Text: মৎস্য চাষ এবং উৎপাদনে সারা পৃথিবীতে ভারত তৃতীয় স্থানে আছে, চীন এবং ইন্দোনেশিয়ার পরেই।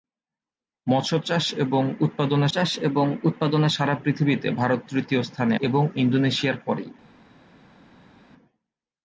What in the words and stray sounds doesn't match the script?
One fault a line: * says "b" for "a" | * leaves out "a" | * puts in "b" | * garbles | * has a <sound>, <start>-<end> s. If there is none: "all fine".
* puts in "চাষ এবং উৎপাদনে"
* leaves out "আছে চীন"